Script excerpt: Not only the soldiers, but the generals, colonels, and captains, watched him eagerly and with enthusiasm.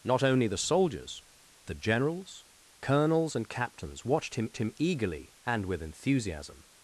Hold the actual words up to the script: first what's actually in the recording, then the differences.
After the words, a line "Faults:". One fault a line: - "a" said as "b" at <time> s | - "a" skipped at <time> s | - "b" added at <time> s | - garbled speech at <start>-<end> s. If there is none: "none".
Not only the soldiers, the generals, colonels, and captains, watched him him eagerly and with enthusiasm.
Faults:
- "but" skipped at 1.2 s
- "him" added at 4.6 s